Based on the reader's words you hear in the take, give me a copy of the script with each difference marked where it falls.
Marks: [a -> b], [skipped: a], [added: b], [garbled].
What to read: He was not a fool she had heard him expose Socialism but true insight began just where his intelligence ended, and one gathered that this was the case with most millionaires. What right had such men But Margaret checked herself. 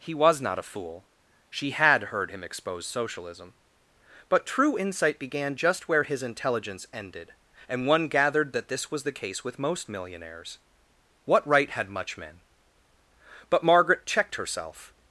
He was not a fool she had heard him expose Socialism but true insight began just where his intelligence ended, and one gathered that this was the case with most millionaires. What right had [such -> much] men But Margaret checked herself.